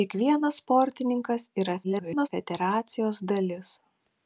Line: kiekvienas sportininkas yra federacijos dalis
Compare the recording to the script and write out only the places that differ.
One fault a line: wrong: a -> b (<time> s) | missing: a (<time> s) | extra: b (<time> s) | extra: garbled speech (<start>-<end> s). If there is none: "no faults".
extra: garbled speech (1.8-2.3 s)